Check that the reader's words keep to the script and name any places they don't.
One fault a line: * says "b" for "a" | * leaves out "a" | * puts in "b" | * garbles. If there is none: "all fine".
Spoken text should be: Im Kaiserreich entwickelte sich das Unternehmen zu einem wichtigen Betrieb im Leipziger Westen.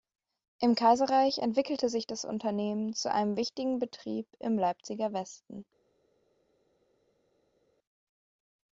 all fine